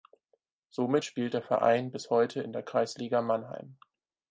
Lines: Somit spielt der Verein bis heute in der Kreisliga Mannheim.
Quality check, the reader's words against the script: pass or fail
pass